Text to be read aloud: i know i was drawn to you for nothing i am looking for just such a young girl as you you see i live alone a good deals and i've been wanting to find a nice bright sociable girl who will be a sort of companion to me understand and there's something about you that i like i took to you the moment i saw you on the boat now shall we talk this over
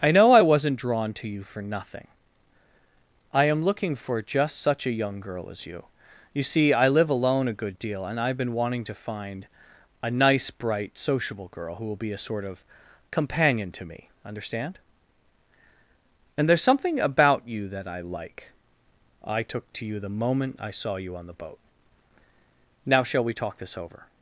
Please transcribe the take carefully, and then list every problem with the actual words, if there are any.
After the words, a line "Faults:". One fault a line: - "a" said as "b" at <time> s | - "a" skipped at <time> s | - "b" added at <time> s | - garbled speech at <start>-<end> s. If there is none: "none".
i know i wasn't drawn to you for nothing i am looking for just such a young girl as you you see i live alone a good deal and i've been wanting to find a nice bright sociable girl who will be a sort of companion to me understand and there's something about you that i like i took to you the moment i saw you on the boat now shall we talk this over
Faults:
- "was" said as "wasn't" at 0.4 s
- "deals" said as "deal" at 7.8 s